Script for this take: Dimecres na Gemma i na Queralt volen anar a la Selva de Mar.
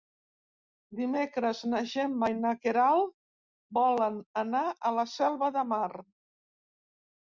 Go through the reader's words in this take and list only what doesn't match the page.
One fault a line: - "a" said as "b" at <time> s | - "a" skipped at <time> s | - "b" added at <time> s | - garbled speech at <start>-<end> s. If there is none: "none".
none